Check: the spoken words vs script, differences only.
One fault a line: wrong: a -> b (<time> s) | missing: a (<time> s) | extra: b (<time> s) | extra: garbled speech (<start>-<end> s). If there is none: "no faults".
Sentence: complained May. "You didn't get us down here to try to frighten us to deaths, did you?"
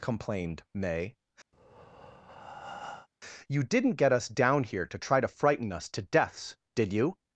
no faults